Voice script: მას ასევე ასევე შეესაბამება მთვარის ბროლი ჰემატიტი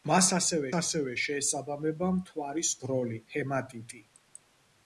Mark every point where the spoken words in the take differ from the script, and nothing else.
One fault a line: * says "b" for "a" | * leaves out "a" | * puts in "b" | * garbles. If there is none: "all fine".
all fine